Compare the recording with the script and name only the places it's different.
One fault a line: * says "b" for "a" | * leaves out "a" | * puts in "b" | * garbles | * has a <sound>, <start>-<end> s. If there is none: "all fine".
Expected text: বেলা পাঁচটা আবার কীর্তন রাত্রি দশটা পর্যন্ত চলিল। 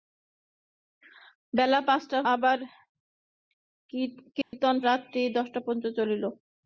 * has a dropout, 4.4-4.5 s